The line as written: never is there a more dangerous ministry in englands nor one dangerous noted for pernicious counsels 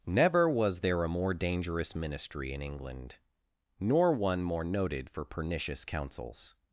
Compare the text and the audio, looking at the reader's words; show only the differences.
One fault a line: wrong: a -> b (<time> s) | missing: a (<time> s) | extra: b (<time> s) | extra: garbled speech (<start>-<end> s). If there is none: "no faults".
wrong: is -> was (0.5 s)
wrong: englands -> england (2.6 s)
wrong: dangerous -> more (4.4 s)